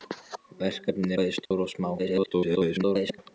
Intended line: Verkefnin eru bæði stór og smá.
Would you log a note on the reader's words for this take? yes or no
yes